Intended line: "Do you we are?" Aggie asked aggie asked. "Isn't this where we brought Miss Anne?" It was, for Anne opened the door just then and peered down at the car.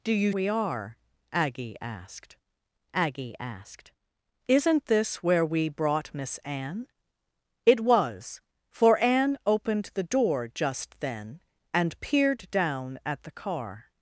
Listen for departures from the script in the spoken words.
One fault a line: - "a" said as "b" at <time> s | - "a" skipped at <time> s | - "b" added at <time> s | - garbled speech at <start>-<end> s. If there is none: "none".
none